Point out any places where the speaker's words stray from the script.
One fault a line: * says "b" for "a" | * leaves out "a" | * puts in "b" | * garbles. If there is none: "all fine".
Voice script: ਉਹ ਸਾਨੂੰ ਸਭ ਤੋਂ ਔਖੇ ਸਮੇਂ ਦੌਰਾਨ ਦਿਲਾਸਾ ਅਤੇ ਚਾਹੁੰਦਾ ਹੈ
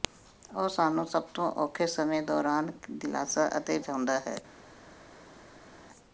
all fine